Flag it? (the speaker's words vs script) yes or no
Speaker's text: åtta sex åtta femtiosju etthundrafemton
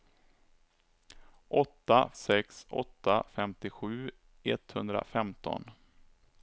no